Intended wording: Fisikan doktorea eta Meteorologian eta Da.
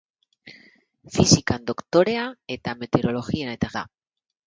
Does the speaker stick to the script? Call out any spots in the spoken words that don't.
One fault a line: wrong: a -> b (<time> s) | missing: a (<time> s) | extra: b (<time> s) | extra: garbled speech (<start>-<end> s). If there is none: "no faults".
no faults